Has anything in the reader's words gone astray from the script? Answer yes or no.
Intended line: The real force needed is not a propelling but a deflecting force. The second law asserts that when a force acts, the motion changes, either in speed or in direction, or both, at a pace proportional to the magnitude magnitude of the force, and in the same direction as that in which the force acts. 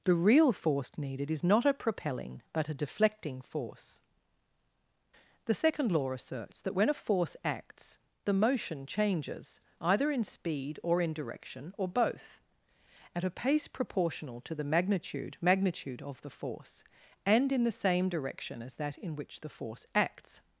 no